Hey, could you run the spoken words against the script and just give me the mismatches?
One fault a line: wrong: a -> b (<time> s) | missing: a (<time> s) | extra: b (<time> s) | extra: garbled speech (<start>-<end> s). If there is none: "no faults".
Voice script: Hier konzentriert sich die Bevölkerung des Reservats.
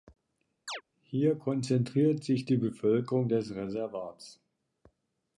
no faults